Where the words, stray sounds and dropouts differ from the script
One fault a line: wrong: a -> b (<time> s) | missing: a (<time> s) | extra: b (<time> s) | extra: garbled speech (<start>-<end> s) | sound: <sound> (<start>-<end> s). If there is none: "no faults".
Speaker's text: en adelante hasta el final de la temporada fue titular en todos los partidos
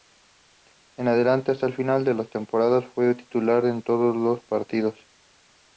no faults